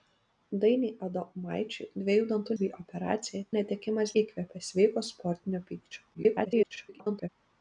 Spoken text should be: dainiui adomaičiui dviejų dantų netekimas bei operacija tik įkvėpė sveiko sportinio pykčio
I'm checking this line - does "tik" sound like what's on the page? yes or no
no